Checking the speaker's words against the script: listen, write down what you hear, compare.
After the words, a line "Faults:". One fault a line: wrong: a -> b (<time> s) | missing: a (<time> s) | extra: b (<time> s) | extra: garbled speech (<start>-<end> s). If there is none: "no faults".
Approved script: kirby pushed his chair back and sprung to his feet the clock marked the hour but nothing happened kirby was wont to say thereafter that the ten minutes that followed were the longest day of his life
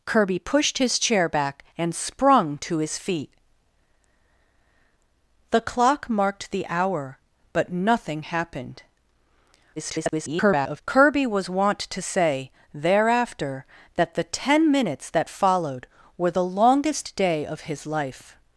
kirby pushed his chair back and sprung to his feet the clock marked the hour but nothing happened [garbled] kirby was wont to say thereafter that the ten minutes that followed were the longest day of his life
Faults:
extra: garbled speech (9.8-10.8 s)